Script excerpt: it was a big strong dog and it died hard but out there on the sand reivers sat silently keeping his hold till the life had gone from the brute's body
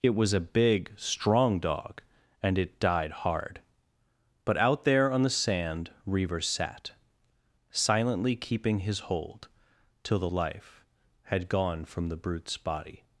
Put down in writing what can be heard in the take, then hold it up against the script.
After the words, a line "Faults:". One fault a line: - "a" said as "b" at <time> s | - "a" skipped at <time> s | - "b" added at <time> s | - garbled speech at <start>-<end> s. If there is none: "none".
it was a big strong dog and it died hard but out there on the sand reivers sat silently keeping his hold till the life had gone from the brute's body
Faults:
none